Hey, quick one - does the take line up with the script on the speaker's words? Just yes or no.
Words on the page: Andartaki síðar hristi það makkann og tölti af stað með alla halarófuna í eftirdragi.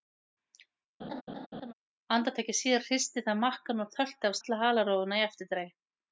no